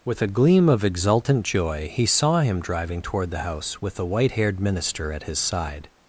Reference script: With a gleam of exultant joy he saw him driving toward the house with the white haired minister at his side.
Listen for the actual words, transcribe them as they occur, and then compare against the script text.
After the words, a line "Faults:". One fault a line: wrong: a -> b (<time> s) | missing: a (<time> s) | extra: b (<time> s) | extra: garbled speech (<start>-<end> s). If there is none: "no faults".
With a gleam of exultant joy he saw him driving toward the house with the white haired minister at his side.
Faults:
no faults